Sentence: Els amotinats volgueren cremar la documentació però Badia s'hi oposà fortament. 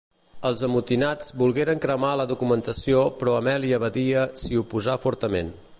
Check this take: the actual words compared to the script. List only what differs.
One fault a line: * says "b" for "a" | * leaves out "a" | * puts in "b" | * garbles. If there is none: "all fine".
* puts in "Amèlia"